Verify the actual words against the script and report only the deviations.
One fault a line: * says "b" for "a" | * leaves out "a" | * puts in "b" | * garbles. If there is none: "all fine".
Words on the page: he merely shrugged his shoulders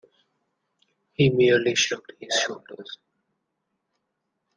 all fine